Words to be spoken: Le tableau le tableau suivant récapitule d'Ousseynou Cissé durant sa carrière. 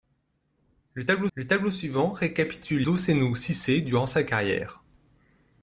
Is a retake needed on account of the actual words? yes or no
no